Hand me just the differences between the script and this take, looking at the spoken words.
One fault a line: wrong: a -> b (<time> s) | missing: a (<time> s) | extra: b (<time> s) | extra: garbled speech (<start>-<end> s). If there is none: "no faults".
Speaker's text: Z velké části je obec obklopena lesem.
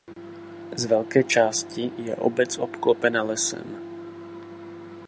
no faults